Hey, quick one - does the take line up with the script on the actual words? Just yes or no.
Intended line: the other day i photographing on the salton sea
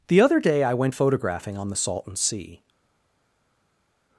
no